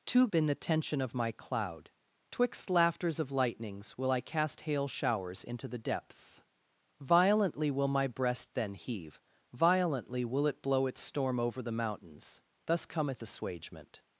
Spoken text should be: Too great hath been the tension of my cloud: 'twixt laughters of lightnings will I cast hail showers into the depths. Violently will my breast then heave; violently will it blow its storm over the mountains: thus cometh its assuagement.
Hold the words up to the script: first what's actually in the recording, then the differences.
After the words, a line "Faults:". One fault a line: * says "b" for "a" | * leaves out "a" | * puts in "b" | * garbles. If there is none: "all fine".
Too been the tension of my cloud: 'twixt laughters of lightnings will I cast hail showers into the depths. Violently will my breast then heave; violently will it blow its storm over the mountains: thus cometh assuagement.
Faults:
* leaves out "great hath"
* leaves out "its"